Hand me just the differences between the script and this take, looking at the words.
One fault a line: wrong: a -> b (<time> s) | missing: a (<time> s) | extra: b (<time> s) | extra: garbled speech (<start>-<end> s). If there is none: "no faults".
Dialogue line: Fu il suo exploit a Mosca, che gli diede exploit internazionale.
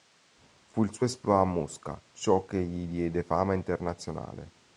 extra: ciò (2.1 s)
wrong: exploit -> fama (3.2 s)